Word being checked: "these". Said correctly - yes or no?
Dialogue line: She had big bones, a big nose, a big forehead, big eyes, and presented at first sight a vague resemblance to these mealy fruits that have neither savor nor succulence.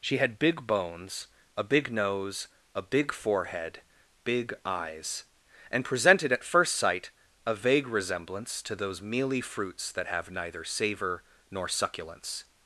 no